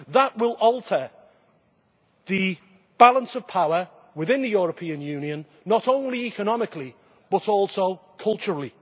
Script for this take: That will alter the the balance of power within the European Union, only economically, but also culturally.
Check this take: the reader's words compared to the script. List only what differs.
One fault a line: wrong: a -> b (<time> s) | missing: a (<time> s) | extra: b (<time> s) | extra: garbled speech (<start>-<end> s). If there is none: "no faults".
missing: the (2.6 s)
extra: not (5.7 s)